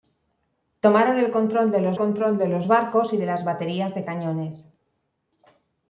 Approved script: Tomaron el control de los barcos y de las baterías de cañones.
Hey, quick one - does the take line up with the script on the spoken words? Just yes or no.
no